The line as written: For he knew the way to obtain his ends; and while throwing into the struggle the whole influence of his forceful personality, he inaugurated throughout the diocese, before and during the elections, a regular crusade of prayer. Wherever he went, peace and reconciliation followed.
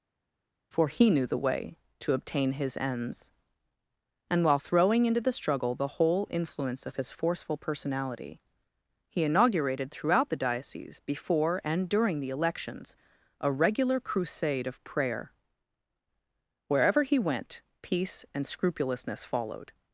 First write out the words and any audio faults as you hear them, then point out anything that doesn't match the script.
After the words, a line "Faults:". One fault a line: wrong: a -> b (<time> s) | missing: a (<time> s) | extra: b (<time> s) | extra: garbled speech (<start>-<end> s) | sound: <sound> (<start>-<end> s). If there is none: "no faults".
For he knew the way to obtain his ends; and while throwing into the struggle the whole influence of his forceful personality, he inaugurated throughout the diocese, before and during the elections, a regular crusade of prayer. Wherever he went, peace and scrupulousness followed.
Faults:
wrong: reconciliation -> scrupulousness (18.5 s)